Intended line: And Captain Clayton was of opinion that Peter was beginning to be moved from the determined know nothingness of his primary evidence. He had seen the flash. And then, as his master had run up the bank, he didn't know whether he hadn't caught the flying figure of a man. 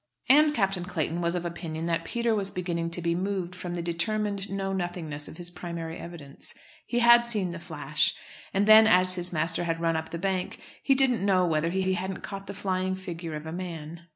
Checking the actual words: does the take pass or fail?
fail